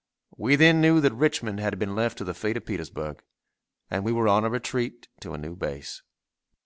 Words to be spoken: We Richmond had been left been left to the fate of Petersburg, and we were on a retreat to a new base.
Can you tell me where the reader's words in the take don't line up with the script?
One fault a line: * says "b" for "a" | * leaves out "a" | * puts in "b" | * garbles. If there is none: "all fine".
* puts in "then knew that"
* leaves out "been left"